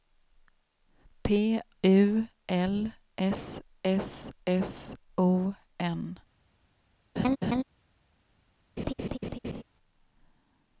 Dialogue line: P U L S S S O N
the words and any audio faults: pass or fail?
fail